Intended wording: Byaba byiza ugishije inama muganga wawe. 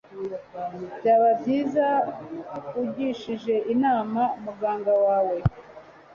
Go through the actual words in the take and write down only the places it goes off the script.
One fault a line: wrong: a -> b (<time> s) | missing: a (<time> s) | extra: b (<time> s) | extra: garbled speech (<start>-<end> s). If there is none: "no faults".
no faults